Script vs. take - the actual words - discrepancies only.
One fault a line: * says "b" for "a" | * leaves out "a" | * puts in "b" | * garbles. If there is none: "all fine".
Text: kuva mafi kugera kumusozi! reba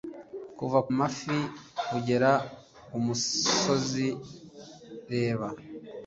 all fine